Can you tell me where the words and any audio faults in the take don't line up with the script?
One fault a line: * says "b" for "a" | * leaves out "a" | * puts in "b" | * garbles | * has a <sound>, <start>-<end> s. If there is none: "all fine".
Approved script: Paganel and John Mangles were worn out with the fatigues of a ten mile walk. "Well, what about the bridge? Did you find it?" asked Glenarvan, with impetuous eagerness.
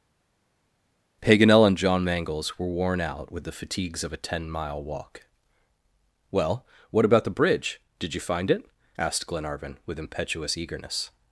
all fine